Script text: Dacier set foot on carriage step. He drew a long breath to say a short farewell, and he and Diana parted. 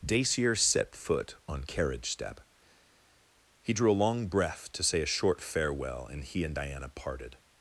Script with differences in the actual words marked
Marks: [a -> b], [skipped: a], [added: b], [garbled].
Dacier set foot on carriage step. He drew a long breath to say a short farewell, and he and Diana parted.